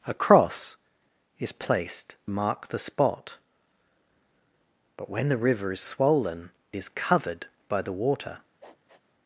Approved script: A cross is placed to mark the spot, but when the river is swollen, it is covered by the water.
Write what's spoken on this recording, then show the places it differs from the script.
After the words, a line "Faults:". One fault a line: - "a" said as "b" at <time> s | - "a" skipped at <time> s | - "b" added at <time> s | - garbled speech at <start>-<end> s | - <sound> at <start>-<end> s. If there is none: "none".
A cross is placed mark the spot, but when the river is swollen, is covered by the water.
Faults:
- "to" skipped at 2.1 s
- "it" skipped at 6.5 s
- sniff at 8.6-9.0 s